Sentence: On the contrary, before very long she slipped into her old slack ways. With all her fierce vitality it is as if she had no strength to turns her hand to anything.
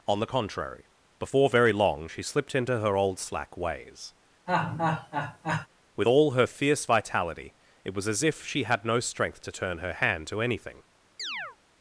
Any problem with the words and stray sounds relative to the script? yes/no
yes